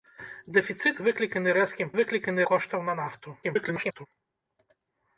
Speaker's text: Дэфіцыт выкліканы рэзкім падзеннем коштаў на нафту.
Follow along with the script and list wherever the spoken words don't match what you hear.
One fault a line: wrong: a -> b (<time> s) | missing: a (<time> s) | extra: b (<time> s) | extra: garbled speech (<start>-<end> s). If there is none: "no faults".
wrong: падзеннем -> выкліканы (2.0 s)
extra: garbled speech (3.4-4.1 s)